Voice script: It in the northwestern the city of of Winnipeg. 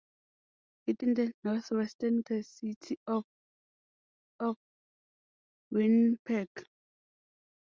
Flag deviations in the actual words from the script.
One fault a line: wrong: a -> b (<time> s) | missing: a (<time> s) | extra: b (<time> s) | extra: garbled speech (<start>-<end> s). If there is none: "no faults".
no faults